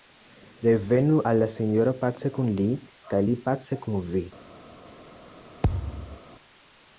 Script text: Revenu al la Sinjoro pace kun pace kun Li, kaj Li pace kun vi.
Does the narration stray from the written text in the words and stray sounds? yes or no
yes